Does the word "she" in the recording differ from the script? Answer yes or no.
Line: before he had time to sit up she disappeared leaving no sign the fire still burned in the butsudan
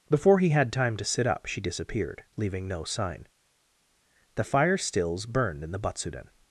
no